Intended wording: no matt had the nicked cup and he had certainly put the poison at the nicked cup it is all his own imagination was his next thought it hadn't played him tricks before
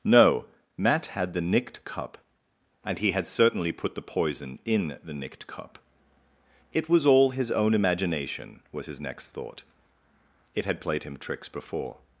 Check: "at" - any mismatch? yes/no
yes